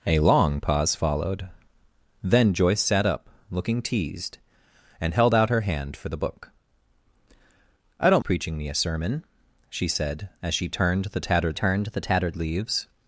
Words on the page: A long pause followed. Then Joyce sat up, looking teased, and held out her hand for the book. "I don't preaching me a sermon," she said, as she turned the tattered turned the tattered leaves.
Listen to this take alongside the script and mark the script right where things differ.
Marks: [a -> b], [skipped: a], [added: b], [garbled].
A long pause followed. Then Joyce sat up, looking teased, and held out her hand for the book. "I don't preaching me a sermon," she said, as she turned the tattered turned the tattered leaves.